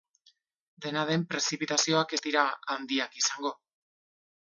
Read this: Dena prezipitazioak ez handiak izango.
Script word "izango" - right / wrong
right